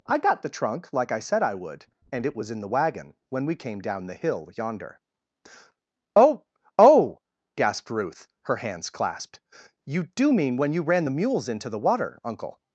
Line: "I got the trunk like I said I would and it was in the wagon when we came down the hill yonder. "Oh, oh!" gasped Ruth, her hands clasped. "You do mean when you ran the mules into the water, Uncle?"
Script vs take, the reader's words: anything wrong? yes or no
no